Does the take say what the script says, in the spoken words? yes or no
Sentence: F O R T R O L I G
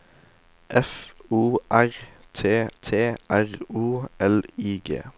no